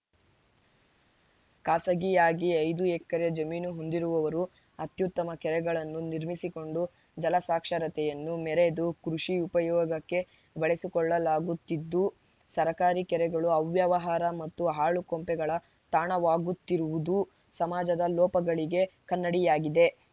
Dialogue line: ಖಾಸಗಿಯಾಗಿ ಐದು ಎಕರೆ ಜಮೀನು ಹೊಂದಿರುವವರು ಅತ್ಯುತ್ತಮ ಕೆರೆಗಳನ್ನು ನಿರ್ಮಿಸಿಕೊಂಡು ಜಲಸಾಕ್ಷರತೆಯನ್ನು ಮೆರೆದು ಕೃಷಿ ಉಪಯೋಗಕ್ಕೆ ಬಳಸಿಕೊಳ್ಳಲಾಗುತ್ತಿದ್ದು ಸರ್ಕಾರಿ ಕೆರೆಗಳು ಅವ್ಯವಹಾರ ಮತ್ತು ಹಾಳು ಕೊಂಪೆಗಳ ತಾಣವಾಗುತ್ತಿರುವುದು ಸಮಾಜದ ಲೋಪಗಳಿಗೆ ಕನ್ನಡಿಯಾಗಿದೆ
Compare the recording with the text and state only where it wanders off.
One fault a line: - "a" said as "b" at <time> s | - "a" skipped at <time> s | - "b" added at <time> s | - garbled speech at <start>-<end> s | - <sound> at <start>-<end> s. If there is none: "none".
none